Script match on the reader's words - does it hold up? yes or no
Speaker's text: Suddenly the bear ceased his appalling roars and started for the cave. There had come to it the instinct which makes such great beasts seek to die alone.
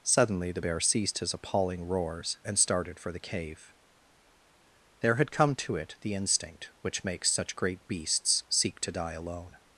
yes